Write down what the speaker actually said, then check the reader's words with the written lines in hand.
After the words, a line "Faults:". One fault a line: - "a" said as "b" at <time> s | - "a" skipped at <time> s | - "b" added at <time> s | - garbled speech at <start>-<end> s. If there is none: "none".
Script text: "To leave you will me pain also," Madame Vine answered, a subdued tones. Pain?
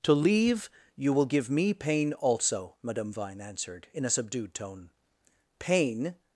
"To leave you will give me pain also," Madame Vine answered, in a subdued tone. Pain?
Faults:
- "give" added at 1.2 s
- "in" added at 3.9 s
- "tones" said as "tone" at 4.5 s